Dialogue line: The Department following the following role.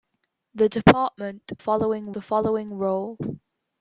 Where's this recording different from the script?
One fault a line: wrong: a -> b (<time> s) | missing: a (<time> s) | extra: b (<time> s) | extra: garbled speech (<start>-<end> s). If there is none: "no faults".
no faults